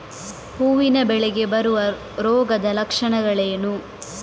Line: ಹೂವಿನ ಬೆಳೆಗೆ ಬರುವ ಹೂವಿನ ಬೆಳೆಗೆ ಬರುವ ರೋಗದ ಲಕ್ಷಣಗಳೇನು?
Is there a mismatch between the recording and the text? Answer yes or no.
yes